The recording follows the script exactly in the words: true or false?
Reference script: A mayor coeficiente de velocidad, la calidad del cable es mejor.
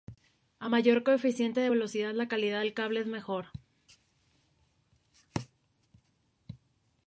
true